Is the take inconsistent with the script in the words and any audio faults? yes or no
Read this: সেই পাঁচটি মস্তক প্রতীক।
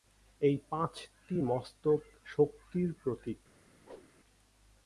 yes